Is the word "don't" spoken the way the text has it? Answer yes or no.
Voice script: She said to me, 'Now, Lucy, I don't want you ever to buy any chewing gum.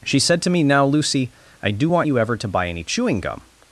no